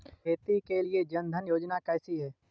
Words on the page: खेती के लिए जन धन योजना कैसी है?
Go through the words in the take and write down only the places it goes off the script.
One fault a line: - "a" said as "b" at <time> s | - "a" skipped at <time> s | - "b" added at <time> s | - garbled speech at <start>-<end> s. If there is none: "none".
none